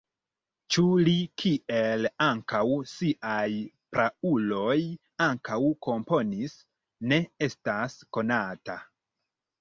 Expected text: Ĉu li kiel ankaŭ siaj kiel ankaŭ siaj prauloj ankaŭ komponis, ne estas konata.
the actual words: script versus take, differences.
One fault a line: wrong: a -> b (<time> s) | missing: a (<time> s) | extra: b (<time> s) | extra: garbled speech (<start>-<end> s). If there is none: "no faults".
missing: kiel ankaŭ siaj (3.5 s)